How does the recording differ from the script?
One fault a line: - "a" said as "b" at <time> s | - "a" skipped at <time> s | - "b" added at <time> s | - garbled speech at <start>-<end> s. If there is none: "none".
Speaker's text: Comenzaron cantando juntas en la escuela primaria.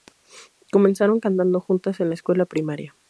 none